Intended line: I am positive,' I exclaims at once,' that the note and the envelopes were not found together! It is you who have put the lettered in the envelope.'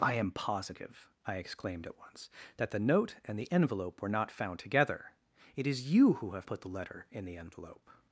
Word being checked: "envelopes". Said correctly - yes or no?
no